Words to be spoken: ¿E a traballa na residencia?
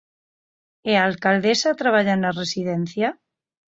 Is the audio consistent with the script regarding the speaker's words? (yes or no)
no